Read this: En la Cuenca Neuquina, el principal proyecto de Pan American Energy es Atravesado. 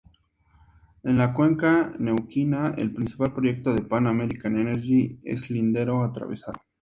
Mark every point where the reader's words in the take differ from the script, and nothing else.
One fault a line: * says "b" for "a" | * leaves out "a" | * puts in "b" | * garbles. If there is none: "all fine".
* puts in "Lindero"